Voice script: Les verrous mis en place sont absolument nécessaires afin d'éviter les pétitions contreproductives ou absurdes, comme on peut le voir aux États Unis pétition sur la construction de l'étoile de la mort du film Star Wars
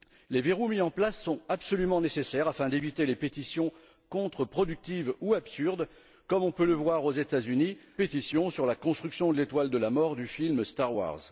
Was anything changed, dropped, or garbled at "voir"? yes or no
no